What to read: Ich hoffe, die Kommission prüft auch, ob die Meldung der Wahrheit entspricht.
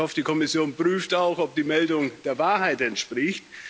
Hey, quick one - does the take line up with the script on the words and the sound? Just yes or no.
yes